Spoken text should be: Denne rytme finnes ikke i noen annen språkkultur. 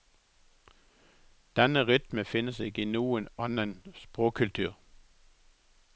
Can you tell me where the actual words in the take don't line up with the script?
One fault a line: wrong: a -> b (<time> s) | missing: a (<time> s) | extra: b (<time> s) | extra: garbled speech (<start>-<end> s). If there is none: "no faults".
no faults